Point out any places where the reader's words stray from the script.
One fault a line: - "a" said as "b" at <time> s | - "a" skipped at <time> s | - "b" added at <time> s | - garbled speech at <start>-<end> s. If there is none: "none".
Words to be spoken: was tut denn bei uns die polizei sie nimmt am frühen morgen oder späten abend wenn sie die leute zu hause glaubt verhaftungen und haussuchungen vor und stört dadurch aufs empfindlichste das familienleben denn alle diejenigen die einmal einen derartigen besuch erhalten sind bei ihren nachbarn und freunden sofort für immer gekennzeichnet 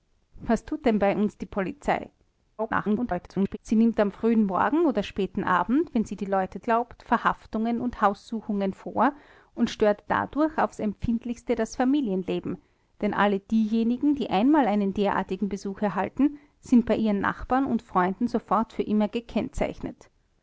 - garbled speech at 2.6-3.6 s
- "zu hause" skipped at 6.6 s